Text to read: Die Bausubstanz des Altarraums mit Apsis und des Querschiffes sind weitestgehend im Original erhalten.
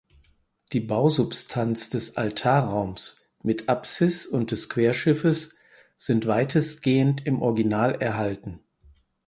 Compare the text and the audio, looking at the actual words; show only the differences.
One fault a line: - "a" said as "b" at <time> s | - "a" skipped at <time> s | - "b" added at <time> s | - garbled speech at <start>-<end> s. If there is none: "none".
none